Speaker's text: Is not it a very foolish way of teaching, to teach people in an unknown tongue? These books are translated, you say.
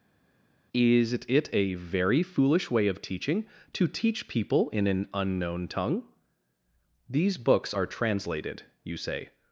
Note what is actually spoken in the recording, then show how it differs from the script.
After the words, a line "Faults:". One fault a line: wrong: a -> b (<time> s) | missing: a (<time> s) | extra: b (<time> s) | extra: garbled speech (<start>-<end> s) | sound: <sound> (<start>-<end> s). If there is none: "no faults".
Is it a very foolish way of teaching, to teach people in an unknown tongue? These books are translated, you say.
Faults:
missing: not (1.1 s)